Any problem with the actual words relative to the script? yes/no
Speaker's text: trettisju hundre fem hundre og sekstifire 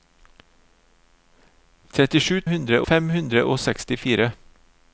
no